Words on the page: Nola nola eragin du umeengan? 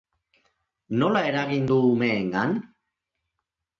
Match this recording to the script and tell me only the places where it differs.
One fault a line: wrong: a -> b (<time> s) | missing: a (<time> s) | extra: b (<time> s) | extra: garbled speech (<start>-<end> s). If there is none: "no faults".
missing: nola (1.2 s)